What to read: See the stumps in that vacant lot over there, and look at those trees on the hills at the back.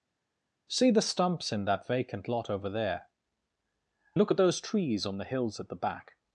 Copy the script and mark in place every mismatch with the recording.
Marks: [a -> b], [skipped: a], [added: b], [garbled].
See the stumps in that vacant lot over there, [skipped: and] look at those trees on the hills at the back.